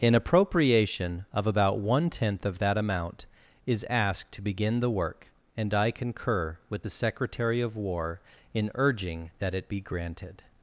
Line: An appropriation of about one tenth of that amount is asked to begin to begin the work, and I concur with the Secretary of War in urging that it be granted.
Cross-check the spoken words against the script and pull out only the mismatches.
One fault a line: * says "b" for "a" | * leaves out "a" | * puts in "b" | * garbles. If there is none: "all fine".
* leaves out "to begin"